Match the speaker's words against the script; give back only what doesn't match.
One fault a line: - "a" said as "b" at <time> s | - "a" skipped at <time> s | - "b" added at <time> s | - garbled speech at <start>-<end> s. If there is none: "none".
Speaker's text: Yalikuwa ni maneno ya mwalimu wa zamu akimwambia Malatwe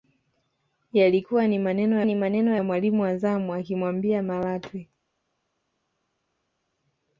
- "ni maneno" added at 2.0 s